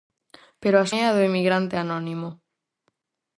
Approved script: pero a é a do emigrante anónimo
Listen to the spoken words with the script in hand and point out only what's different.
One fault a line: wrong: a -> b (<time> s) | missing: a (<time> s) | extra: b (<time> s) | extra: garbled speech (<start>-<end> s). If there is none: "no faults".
no faults